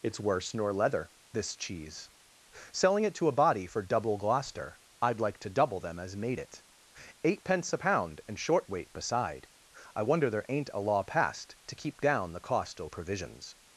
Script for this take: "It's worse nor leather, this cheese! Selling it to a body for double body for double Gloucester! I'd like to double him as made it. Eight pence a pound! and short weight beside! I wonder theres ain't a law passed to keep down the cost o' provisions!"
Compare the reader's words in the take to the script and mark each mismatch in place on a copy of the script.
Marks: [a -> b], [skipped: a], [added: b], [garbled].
"It's worse nor leather, this cheese! Selling it to a body for double [skipped: body for double] Gloucester! I'd like to double [him -> them] as made it. Eight pence a pound! and short weight beside! I wonder [theres -> there] ain't a law passed to keep down the cost o' provisions!"